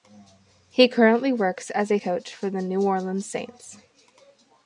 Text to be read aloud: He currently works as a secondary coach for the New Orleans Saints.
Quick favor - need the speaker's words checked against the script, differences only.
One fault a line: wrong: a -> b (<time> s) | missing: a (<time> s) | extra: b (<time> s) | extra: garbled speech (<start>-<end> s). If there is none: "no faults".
missing: secondary (2.0 s)